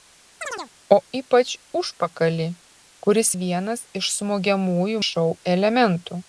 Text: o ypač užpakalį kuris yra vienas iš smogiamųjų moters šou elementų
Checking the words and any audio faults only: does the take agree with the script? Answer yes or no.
no